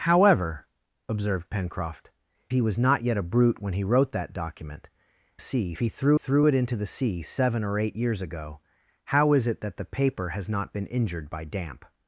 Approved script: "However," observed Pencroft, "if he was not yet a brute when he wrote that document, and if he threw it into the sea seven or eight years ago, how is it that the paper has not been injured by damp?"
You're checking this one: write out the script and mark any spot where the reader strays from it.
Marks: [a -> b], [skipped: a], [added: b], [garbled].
"However," observed Pencroft, [skipped: "if] he was not yet a brute when he wrote that document, [and -> sea] if he threw [added: threw] it into the sea seven or eight years ago, how is it that the paper has not been injured by damp?"